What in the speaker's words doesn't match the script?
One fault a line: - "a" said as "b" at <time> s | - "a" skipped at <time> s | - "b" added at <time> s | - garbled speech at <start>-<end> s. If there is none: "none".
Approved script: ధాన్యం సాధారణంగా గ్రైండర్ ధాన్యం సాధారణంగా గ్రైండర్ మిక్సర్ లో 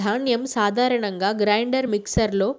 - "ధాన్యం సాధారణంగా గ్రైండర్" skipped at 1.9 s